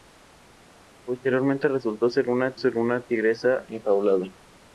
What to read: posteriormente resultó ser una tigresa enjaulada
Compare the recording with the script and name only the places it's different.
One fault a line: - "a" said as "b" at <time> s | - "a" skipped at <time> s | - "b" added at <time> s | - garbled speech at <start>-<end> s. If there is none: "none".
- "ser una" added at 2.5 s